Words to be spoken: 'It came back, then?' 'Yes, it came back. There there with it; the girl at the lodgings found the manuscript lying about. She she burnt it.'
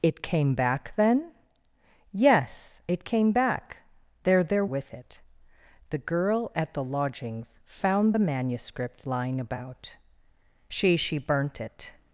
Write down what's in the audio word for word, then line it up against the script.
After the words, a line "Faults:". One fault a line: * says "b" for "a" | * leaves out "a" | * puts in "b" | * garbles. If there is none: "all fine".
'It came back, then?' 'Yes, it came back. There there with it; the girl at the lodgings found the manuscript lying about. She she burnt it.'
Faults:
all fine